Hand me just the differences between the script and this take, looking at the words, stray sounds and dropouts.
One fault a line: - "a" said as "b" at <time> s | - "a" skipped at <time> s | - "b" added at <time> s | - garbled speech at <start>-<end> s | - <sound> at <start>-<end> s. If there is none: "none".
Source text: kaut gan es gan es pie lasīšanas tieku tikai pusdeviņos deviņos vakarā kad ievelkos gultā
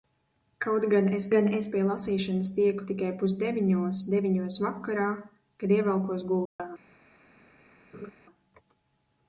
- dropout at 6.5-6.6 s
- laugh at 7.9-8.1 s